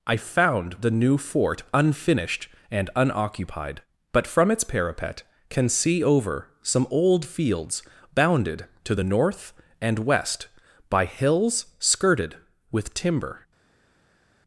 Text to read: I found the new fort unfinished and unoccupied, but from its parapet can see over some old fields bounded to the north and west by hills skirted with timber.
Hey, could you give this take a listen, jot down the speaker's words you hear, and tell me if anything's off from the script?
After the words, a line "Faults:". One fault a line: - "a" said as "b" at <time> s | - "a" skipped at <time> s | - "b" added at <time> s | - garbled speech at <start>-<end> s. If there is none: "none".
I found the new fort unfinished and unoccupied, but from its parapet can see over some old fields bounded to the north and west by hills skirted with timber.
Faults:
none